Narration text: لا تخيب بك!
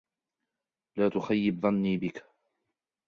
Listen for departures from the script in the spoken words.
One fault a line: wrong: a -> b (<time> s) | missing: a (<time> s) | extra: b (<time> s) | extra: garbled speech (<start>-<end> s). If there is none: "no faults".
extra: ظني (1.6 s)